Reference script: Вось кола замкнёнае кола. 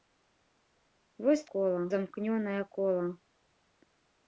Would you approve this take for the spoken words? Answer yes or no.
yes